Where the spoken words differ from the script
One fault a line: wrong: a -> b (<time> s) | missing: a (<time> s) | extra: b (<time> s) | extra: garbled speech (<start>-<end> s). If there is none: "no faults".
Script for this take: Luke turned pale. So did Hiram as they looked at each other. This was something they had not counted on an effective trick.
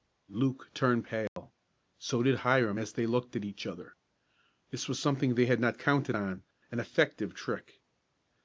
no faults